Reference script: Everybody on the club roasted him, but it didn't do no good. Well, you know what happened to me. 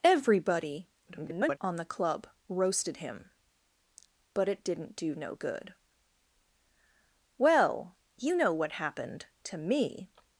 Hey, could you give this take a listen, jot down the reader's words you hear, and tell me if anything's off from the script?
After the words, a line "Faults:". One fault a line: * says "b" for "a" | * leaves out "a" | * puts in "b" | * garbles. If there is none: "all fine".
Everybody [garbled] on the club roasted him, but it didn't do no good. Well, you know what happened to me.
Faults:
* garbles